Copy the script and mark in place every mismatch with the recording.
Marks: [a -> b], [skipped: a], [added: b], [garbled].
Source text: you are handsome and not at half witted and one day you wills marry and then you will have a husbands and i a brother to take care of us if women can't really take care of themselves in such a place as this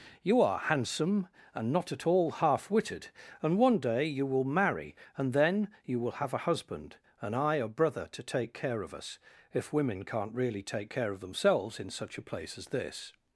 you are handsome and not at [added: all] half witted and one day you [wills -> will] marry and then you will have a [husbands -> husband] and i a brother to take care of us if women can't really take care of themselves in such a place as this